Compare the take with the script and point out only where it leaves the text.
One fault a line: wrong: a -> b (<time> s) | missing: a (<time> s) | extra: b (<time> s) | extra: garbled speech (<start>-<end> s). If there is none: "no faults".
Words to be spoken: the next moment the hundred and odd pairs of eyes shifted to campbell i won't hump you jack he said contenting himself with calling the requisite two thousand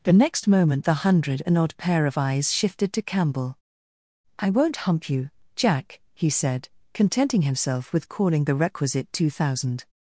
wrong: pairs -> pair (1.8 s)